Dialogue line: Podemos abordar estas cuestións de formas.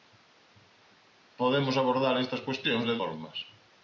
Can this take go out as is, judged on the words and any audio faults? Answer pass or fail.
pass